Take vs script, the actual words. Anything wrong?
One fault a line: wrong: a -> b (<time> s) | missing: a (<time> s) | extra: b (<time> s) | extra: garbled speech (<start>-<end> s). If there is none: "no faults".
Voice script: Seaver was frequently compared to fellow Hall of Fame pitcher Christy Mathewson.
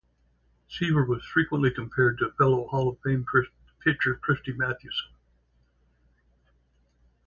no faults